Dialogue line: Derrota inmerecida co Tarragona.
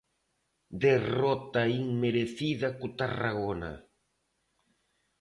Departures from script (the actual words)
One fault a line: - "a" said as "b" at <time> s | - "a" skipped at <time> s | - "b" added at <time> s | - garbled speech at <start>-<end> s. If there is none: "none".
none